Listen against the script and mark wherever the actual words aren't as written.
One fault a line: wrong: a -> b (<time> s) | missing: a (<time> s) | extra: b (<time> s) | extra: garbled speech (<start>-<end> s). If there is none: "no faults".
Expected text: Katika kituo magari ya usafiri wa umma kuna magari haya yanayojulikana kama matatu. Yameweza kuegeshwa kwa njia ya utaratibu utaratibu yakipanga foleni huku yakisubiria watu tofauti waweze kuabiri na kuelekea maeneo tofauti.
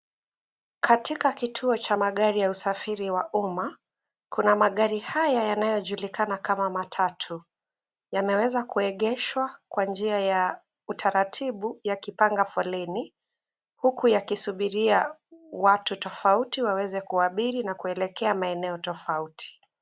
extra: cha (1.8 s)
missing: utaratibu (11.8 s)